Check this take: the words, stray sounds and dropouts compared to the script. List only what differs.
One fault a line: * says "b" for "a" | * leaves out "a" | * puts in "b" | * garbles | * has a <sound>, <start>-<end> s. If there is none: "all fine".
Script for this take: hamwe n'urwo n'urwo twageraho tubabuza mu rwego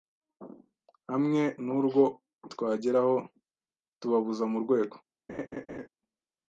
* leaves out "n'urwo"
* has a laugh, 5.3-5.9 s